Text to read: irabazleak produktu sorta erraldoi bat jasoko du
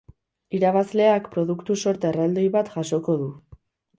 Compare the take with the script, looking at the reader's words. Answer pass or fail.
pass